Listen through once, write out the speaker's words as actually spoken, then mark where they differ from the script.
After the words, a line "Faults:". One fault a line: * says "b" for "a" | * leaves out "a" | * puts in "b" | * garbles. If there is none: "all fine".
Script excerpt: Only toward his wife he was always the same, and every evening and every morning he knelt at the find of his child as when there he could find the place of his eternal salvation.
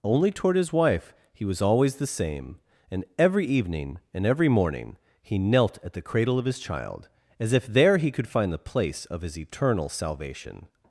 Only toward his wife he was always the same, and every evening and every morning he knelt at the cradle of his child as if there he could find the place of his eternal salvation.
Faults:
* says "cradle" for "find"
* says "if" for "when"